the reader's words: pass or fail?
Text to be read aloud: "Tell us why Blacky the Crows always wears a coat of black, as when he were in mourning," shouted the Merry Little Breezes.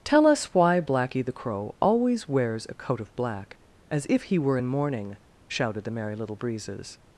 fail